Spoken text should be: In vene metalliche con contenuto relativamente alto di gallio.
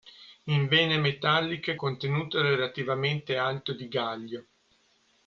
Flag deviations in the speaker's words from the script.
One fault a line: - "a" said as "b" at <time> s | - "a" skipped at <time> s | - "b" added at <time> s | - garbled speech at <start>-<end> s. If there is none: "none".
- "con" skipped at 1.8 s